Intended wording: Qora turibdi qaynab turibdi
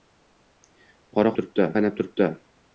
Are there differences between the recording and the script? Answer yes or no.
no